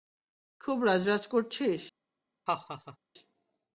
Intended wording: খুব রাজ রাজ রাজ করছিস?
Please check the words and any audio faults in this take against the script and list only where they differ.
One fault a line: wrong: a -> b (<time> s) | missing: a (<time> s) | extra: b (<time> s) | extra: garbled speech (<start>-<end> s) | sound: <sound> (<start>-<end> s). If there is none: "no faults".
missing: রাজ (1.2 s)
sound: laugh (2.5-3.0 s)